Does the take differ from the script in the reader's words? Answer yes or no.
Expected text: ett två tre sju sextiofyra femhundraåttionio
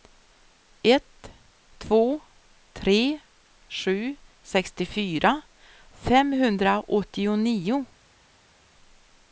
no